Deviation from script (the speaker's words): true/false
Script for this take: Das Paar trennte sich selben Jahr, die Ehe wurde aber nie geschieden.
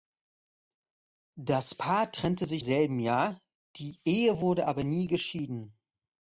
false